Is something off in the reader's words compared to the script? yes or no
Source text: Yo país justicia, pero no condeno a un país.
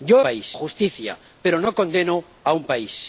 no